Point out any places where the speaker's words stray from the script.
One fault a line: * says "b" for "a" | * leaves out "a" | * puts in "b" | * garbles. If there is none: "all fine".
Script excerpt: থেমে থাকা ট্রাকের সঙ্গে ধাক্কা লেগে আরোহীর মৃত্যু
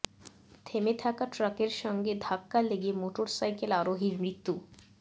* puts in "মোটরসাইকেল"